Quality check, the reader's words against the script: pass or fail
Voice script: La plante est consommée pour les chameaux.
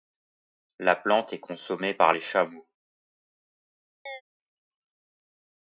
fail